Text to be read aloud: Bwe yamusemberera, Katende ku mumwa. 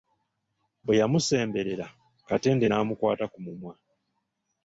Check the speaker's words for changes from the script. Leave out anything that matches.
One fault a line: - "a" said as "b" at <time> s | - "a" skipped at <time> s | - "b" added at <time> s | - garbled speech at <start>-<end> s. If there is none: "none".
- "n'amukwata" added at 2.7 s